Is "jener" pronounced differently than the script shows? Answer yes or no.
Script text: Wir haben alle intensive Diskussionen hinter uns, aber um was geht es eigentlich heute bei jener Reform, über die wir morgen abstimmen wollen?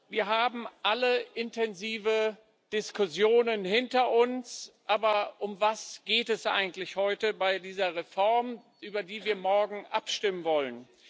yes